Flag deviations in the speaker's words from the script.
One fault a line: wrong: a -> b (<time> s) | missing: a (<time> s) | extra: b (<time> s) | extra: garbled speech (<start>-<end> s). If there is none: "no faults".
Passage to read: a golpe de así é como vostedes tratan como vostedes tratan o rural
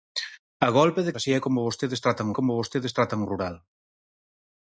no faults